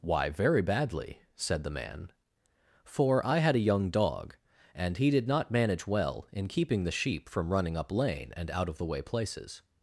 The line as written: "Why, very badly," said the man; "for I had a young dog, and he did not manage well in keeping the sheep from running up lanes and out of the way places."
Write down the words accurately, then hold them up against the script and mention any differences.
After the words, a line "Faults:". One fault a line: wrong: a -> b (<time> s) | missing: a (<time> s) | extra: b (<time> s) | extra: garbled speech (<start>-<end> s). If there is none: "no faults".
"Why, very badly," said the man; "for I had a young dog, and he did not manage well in keeping the sheep from running up lane and out of the way places."
Faults:
wrong: lanes -> lane (7.9 s)